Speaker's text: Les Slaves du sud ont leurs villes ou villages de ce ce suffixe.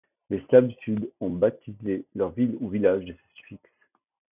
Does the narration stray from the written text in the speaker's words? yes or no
yes